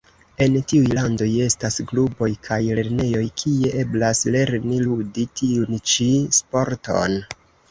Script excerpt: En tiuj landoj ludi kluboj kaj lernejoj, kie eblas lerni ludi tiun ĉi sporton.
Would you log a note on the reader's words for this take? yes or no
yes